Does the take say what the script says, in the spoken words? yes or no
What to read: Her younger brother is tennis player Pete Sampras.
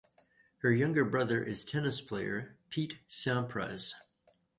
yes